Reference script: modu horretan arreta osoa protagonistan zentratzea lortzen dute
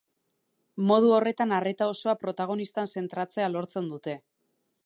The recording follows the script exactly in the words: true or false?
true